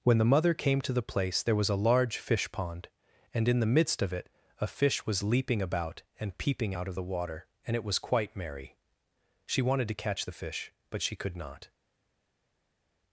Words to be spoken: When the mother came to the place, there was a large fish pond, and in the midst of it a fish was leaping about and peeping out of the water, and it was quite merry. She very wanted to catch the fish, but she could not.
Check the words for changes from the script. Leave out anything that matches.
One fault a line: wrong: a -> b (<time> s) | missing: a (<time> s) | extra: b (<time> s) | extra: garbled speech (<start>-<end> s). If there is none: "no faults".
missing: very (9.6 s)